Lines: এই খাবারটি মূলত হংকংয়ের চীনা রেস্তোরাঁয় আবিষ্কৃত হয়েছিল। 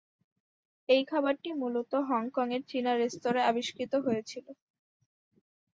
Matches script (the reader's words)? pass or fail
pass